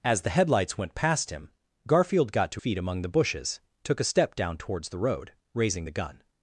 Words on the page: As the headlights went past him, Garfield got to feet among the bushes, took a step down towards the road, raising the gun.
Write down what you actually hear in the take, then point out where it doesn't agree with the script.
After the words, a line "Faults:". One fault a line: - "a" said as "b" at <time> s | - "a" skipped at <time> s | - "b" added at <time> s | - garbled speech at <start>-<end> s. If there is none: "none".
As the headlights went past him, Garfield got to feet among the bushes, took a step down towards the road, raising the gun.
Faults:
none